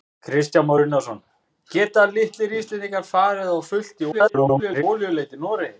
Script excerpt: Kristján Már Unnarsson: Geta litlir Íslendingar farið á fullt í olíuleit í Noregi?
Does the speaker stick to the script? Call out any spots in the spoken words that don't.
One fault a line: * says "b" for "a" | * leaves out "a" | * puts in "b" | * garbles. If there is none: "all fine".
* garbles